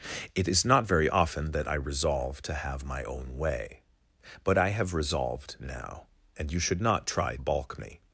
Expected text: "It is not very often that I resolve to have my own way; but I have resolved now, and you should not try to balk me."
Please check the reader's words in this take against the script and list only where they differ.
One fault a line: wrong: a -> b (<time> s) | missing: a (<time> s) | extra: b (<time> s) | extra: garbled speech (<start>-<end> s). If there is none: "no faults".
missing: to (7.3 s)